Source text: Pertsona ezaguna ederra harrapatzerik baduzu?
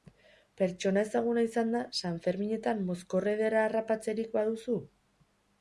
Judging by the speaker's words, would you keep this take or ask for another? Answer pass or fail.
fail